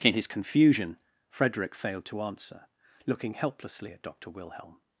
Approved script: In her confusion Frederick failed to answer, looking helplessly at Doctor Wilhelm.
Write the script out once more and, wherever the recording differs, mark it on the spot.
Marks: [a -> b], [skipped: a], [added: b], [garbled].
In [her -> his] confusion Frederick failed to answer, looking helplessly at Doctor Wilhelm.